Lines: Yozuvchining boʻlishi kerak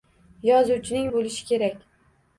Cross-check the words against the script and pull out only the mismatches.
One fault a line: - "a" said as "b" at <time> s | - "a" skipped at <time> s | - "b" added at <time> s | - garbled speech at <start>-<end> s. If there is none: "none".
none